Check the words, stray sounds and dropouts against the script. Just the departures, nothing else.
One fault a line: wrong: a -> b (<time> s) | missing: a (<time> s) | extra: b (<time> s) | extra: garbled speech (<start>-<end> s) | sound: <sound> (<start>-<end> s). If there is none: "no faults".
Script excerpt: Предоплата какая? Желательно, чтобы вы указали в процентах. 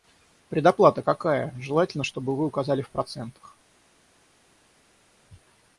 no faults